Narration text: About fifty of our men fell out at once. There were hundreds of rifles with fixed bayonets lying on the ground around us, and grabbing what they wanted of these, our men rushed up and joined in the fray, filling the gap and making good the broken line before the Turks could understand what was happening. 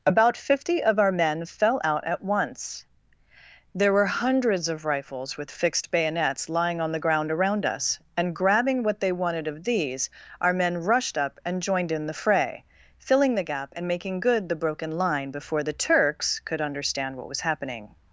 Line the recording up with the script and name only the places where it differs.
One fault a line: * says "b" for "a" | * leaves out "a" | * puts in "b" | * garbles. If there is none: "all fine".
all fine